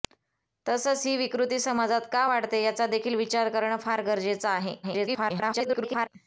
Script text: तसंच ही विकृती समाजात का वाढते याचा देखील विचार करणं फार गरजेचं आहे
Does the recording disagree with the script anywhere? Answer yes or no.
yes